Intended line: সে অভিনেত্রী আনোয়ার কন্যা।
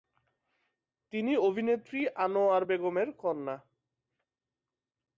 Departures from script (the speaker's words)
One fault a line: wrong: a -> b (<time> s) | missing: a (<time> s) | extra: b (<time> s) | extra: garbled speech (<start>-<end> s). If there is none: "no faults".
wrong: সে -> তিনি (1.1 s)
extra: বেগমের (2.6 s)